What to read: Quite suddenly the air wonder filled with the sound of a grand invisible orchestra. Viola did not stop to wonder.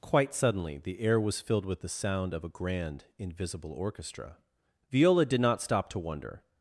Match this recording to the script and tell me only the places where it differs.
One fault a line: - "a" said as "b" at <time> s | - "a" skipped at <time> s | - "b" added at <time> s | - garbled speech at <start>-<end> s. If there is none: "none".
- "wonder" said as "was" at 1.2 s